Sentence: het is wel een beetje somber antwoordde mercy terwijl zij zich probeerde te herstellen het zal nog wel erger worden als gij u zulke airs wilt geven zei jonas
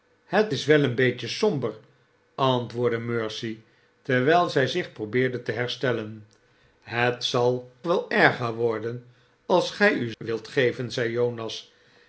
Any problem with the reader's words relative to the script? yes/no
yes